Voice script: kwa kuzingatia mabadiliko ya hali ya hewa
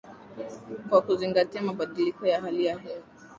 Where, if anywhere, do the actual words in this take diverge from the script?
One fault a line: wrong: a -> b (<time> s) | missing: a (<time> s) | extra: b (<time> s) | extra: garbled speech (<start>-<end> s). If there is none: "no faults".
no faults